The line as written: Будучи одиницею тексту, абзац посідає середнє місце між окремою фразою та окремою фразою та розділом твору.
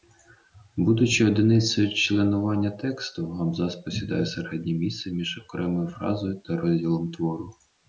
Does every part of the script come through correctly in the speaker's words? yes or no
no